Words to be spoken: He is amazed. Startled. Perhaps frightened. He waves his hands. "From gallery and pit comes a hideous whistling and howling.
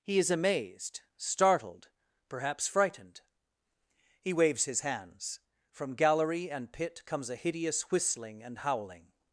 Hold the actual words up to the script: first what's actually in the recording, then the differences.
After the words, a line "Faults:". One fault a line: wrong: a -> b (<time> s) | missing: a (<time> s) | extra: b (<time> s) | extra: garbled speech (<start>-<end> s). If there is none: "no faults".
He is amazed. Startled. Perhaps frightened. He waves his hands. "From gallery and pit comes a hideous whistling and howling.
Faults:
no faults